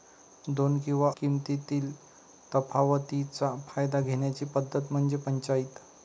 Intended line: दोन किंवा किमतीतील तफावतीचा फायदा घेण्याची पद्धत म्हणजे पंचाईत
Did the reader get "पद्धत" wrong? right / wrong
right